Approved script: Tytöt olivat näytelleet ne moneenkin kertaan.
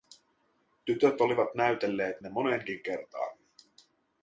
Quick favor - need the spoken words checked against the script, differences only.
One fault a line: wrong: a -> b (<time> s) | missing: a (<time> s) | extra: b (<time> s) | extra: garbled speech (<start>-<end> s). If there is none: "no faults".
no faults